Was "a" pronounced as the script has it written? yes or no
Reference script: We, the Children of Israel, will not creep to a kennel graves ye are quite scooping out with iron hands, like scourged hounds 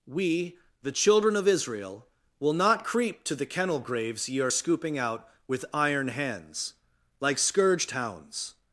no